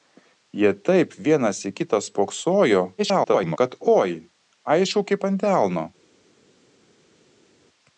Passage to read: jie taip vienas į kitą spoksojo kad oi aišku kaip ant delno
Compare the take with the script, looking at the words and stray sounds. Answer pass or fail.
fail